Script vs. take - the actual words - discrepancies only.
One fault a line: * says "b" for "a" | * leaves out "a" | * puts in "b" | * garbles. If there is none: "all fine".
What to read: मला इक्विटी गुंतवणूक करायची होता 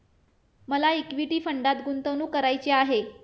* puts in "फंडात"
* says "आहे" for "होता"